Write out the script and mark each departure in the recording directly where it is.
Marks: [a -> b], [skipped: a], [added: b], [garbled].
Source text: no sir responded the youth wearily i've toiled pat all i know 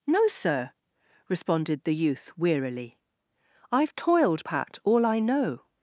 no sir responded the youth wearily i've toiled pat all i know